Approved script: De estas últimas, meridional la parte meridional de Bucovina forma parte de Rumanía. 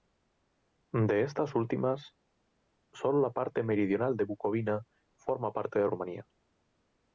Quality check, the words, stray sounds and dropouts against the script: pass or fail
fail